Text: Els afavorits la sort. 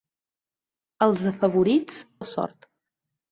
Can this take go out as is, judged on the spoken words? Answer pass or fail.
pass